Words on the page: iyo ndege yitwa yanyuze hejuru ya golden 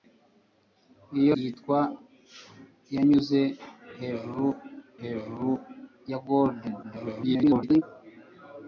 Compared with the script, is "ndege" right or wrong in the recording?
wrong